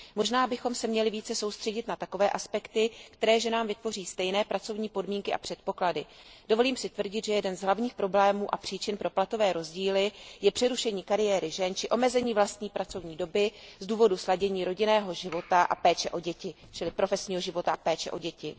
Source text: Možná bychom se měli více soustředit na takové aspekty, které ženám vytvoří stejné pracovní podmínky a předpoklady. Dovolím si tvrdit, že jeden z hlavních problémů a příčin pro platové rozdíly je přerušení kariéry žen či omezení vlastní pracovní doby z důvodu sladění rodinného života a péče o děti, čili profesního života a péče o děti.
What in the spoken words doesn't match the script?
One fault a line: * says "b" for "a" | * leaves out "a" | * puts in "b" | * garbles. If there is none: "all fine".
all fine